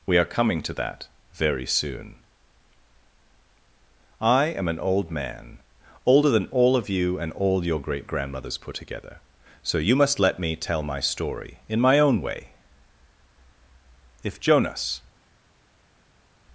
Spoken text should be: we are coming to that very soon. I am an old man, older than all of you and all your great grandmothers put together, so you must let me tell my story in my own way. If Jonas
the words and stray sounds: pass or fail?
pass